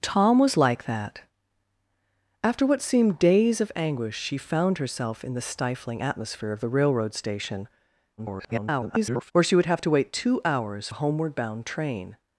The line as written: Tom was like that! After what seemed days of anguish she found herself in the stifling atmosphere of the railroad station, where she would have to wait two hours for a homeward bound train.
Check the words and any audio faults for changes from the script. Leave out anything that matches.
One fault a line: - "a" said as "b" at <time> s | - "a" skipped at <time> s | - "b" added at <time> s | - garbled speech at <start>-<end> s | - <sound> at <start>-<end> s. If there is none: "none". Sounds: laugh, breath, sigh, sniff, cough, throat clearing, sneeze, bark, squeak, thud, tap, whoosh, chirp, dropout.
- garbled speech at 8.2-9.3 s
- "for" skipped at 10.9 s